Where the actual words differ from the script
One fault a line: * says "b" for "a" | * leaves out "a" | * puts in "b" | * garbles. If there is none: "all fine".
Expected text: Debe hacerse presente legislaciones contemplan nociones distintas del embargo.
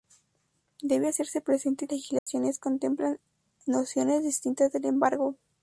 all fine